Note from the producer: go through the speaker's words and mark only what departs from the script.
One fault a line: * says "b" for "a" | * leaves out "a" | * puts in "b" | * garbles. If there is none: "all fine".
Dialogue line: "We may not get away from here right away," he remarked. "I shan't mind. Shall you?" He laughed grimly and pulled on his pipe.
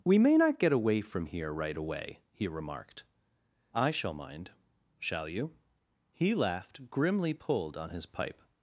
* says "shall" for "shan't"
* leaves out "and"